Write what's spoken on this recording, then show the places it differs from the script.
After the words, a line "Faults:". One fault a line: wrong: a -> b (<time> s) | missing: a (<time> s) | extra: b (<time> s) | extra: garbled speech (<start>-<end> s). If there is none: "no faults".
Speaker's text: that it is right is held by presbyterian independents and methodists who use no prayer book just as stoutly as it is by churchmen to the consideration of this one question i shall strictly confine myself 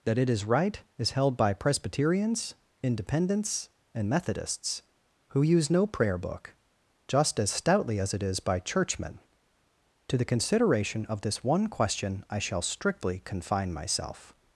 that it is right is held by presbyterians independents and methodists who use no prayer book just as stoutly as it is by churchmen to the consideration of this one question i shall strictly confine myself
Faults:
wrong: presbyterian -> presbyterians (1.5 s)